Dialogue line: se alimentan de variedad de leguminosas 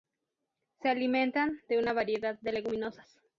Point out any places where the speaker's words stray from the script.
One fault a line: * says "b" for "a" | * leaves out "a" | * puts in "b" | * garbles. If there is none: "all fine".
* puts in "una"